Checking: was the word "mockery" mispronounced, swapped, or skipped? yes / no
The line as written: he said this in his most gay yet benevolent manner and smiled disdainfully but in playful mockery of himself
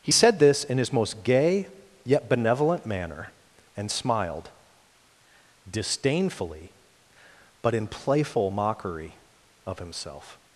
no